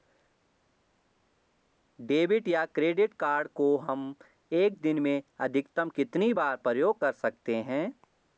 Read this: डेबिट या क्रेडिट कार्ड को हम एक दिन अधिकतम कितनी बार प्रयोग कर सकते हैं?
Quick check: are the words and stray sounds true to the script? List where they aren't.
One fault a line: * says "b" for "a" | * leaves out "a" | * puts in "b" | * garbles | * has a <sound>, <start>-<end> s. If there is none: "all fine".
* puts in "में"